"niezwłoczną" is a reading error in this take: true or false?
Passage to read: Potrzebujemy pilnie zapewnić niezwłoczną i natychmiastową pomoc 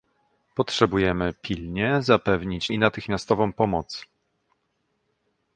true